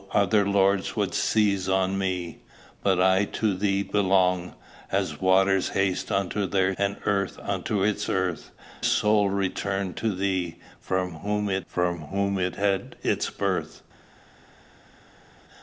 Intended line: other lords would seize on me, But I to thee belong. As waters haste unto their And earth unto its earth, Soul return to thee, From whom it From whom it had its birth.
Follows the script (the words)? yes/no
yes